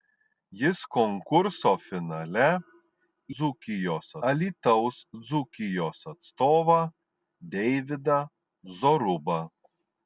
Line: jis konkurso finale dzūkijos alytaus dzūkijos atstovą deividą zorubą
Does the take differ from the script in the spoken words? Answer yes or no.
no